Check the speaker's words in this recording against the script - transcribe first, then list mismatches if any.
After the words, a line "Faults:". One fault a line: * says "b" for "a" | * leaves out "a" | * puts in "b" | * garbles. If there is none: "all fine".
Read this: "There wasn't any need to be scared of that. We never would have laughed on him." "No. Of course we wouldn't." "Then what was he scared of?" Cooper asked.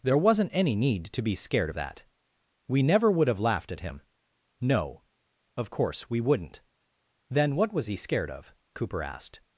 "There wasn't any need to be scared of that. We never would have laughed at him." "No. Of course we wouldn't." "Then what was he scared of?" Cooper asked.
Faults:
* says "at" for "on"